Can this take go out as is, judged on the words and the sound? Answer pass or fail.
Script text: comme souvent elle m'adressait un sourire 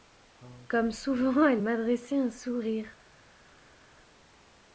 pass